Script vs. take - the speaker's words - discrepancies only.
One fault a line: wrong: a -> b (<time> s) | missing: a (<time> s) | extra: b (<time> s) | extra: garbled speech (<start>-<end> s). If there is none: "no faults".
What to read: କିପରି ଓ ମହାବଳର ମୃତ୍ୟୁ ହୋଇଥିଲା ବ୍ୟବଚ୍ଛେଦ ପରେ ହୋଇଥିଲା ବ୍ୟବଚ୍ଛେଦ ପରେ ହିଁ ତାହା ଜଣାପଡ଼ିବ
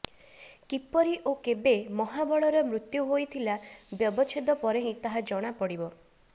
extra: କେବେ (1.5 s)
missing: ହୋଇଥିଲା ବ୍ୟବଚ୍ଛେଦ ପରେ (4.9 s)